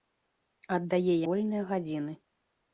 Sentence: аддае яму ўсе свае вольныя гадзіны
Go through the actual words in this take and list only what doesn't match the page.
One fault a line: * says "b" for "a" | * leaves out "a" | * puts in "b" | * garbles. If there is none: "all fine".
* leaves out "яму ўсе свае"